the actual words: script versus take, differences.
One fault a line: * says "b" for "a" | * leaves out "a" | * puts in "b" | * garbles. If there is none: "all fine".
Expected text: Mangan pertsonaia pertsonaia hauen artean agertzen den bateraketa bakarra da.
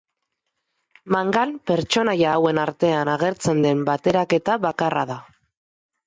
* leaves out "pertsonaia"